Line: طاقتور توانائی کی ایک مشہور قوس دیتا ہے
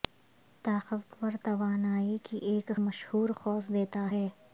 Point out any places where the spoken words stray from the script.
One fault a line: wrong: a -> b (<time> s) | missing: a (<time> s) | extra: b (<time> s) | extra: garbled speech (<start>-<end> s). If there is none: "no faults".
no faults